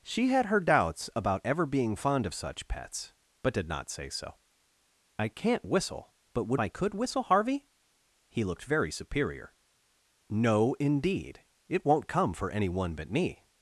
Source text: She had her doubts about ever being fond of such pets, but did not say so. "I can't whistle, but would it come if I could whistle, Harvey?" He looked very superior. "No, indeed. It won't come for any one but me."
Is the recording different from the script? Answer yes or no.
yes